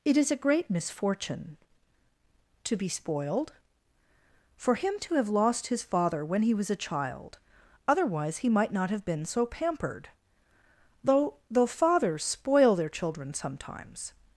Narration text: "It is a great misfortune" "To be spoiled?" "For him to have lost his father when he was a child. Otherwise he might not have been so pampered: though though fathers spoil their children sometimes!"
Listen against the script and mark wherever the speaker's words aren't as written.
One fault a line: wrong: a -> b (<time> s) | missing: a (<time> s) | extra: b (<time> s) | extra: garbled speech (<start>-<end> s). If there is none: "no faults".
no faults